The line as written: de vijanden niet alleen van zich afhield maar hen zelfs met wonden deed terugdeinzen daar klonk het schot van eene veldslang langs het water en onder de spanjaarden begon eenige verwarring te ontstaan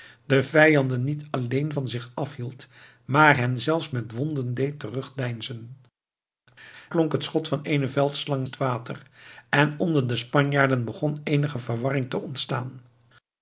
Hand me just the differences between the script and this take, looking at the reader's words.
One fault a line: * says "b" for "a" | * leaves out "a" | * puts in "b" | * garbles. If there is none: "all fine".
* leaves out "daar"
* leaves out "langs"